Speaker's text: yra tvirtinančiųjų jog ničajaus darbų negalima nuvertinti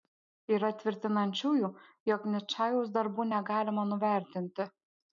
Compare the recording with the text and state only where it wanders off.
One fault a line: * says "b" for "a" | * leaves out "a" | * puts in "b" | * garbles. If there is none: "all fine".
all fine